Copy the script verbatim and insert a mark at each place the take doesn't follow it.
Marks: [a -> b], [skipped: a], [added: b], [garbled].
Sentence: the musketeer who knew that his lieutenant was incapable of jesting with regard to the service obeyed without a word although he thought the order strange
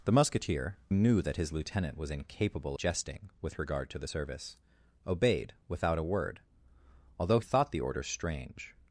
the musketeer [skipped: who] knew that his lieutenant was incapable [skipped: of] jesting with regard to the service obeyed without a word although [skipped: he] thought the order strange